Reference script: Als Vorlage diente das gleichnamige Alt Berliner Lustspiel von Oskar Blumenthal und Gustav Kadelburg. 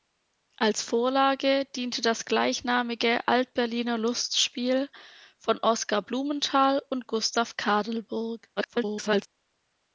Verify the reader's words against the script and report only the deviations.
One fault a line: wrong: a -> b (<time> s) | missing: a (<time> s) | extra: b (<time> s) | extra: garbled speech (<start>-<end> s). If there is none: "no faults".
extra: garbled speech (8.6-9.3 s)